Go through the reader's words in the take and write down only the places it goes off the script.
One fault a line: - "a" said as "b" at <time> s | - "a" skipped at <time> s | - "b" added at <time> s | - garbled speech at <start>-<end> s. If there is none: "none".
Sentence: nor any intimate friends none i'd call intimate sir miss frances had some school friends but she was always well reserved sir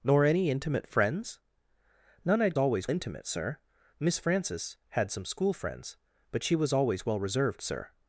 - "call" said as "always" at 2.6 s